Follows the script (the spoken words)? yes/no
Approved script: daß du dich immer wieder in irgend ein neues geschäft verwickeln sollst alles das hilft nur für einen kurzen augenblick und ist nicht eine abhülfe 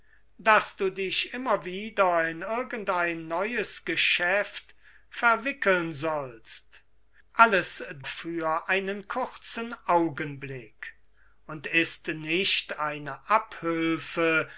no